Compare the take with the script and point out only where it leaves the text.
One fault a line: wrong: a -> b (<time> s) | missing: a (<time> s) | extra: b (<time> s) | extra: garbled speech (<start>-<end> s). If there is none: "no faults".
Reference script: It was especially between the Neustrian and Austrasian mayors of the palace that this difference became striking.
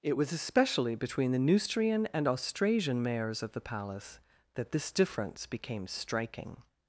no faults